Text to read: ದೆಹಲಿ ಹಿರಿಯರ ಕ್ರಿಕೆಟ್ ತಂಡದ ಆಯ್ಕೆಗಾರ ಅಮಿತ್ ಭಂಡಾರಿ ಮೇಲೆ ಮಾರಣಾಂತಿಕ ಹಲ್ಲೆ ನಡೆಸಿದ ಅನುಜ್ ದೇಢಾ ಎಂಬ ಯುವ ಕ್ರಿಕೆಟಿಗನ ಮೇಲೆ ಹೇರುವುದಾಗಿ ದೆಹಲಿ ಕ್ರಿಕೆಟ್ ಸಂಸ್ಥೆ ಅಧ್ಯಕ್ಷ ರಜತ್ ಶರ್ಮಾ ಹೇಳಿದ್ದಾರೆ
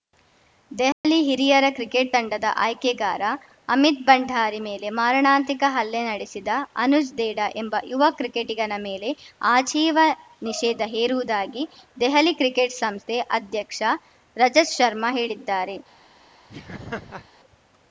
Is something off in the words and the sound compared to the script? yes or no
yes